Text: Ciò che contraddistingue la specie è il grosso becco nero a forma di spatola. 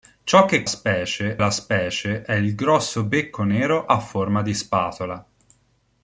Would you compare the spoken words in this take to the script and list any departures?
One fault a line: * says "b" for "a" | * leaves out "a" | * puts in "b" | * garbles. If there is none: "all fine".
* says "specie" for "contraddistingue"